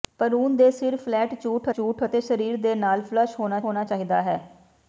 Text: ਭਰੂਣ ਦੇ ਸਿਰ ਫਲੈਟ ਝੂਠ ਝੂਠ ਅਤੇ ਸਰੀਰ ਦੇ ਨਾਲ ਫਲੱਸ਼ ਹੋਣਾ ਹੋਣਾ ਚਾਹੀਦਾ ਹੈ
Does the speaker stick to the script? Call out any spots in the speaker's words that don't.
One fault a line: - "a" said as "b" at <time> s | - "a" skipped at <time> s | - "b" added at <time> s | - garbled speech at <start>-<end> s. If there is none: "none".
none